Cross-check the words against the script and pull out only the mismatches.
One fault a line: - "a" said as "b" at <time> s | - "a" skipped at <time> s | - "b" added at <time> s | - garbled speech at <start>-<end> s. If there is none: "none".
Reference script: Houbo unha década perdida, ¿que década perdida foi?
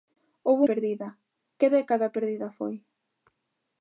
- "unha década" skipped at 0.6 s